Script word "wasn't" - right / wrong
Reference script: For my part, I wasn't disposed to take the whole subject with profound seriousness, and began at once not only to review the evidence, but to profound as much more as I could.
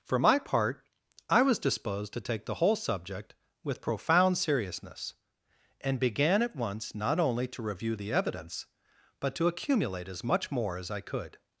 wrong